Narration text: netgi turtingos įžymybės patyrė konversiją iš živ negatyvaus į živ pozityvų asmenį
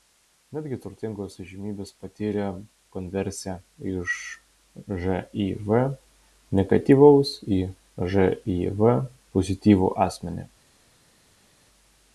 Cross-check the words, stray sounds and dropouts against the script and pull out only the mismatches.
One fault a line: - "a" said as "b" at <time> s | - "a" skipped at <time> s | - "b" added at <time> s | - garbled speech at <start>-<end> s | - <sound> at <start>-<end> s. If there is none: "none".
none